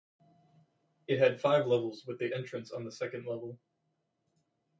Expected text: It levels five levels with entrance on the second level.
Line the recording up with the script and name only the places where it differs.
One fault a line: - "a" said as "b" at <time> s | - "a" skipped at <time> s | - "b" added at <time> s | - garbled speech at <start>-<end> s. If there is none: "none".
- "levels" said as "had" at 1.2 s
- "the" added at 2.2 s